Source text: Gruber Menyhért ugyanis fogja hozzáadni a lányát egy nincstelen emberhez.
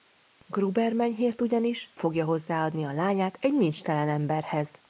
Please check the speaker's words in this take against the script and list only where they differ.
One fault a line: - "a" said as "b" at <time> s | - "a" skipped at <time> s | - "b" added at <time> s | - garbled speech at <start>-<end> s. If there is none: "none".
none